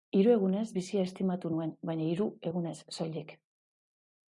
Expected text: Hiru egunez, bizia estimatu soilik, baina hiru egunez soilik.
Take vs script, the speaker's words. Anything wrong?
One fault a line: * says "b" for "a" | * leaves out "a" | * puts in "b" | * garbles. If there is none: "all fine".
* says "nuen" for "soilik"